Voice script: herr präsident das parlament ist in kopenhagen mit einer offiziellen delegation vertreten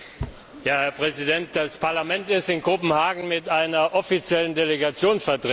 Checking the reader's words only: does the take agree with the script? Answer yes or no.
yes